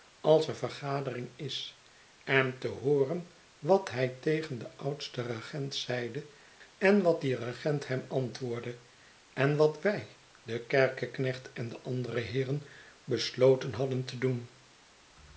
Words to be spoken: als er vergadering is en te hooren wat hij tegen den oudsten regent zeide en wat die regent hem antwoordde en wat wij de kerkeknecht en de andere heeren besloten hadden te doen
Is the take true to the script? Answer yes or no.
yes